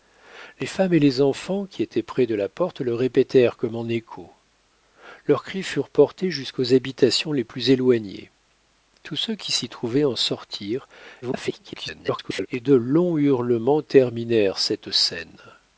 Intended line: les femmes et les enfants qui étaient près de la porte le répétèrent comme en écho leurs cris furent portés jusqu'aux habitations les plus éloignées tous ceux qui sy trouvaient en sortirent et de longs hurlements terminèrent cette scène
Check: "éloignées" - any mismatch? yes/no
no